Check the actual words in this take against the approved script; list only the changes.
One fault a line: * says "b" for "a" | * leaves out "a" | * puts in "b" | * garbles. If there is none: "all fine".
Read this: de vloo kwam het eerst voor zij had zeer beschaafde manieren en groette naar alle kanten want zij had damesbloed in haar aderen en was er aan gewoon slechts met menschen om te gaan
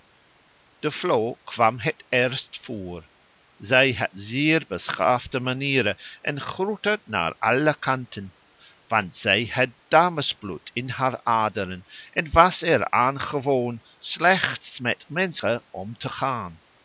all fine